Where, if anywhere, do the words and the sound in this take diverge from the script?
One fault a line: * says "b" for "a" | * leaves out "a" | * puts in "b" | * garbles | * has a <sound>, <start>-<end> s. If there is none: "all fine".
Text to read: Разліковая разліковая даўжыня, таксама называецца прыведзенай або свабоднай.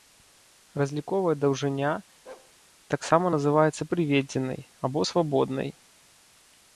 * leaves out "разліковая"
* has a bark, 2.3-2.5 s